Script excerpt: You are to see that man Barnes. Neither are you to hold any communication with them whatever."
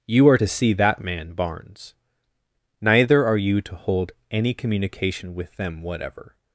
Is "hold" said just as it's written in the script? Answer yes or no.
yes